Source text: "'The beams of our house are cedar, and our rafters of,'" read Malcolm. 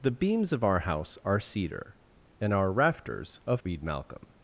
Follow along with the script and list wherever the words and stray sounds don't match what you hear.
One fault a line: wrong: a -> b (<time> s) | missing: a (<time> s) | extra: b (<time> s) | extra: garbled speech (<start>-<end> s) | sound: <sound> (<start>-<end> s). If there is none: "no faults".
no faults